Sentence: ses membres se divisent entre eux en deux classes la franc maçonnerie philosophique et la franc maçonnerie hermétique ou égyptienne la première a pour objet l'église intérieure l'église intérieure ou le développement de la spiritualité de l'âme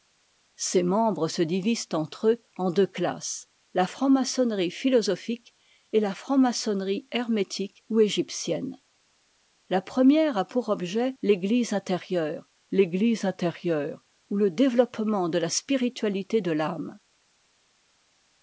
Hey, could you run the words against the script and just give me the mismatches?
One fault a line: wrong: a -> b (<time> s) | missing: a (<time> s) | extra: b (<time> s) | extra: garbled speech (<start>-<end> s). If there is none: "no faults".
no faults